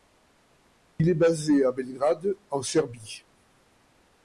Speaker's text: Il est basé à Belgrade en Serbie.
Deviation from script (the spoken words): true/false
false